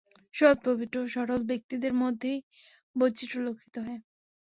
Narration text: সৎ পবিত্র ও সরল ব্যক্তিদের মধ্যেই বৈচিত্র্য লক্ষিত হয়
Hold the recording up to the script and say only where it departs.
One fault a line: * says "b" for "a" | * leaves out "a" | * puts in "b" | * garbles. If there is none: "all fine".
all fine